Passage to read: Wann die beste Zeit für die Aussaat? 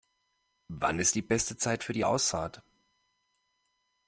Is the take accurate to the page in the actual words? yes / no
no